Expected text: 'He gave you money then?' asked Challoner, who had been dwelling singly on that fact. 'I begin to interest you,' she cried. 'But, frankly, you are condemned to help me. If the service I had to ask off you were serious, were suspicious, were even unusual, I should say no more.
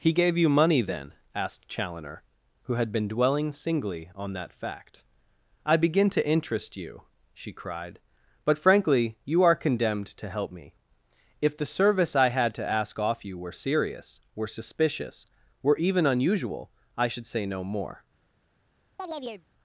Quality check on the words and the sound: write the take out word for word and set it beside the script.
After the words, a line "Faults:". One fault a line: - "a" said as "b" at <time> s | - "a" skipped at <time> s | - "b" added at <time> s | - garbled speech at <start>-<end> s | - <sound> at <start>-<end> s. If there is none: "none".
'He gave you money then?' asked Challoner, who had been dwelling singly on that fact. 'I begin to interest you,' she cried. 'But, frankly, you are condemned to help me. If the service I had to ask off you were serious, were suspicious, were even unusual, I should say no more.
Faults:
- chirp at 19.0-19.5 s